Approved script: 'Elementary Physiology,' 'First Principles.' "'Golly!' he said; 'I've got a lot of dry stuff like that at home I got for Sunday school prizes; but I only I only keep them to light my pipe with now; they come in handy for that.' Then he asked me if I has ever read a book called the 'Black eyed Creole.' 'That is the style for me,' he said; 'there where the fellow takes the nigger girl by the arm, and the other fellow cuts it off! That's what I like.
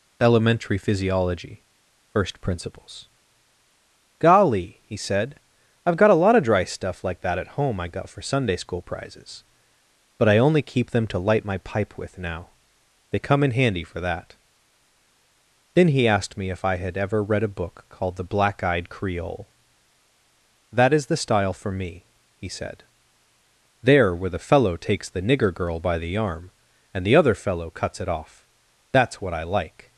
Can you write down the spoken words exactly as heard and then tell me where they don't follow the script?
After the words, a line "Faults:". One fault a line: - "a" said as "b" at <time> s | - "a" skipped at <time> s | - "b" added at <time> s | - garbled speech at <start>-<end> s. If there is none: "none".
'Elementary Physiology,' 'First Principles.' "'Golly!' he said; 'I've got a lot of dry stuff like that at home I got for Sunday school prizes; but I only keep them to light my pipe with now; they come in handy for that.' Then he asked me if I had ever read a book called the 'Black eyed Creole.' 'That is the style for me,' he said; 'there where the fellow takes the nigger girl by the arm, and the other fellow cuts it off! That's what I like.
Faults:
- "I only" skipped at 10.6 s
- "has" said as "had" at 16.7 s